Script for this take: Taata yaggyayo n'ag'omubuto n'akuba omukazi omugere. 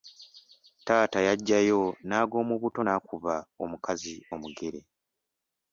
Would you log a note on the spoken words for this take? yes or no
no